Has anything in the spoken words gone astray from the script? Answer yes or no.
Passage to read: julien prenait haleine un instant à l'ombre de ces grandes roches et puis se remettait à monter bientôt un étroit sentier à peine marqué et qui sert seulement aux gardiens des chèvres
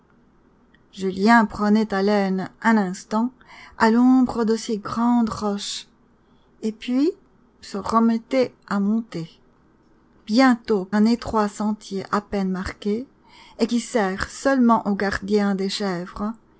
no